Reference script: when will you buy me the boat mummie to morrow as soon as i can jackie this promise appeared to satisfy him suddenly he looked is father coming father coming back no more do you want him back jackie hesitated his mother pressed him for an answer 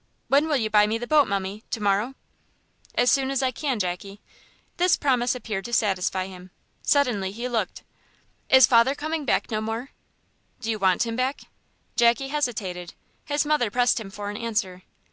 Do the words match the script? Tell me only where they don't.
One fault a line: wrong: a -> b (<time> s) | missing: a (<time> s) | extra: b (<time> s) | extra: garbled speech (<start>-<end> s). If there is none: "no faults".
missing: father coming (9.3 s)